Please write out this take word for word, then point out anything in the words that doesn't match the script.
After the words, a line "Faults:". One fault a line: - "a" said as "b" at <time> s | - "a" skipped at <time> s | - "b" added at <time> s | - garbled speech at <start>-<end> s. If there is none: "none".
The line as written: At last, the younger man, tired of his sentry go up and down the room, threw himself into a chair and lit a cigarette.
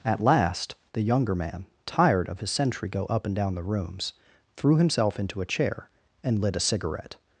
At last, the younger man, tired of his sentry go up and down the rooms, threw himself into a chair and lit a cigarette.
Faults:
- "room" said as "rooms" at 3.6 s